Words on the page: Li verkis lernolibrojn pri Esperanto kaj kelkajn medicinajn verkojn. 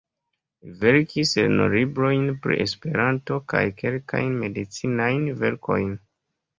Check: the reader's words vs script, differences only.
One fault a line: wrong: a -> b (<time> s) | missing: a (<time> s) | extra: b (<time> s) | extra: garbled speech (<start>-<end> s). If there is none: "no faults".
no faults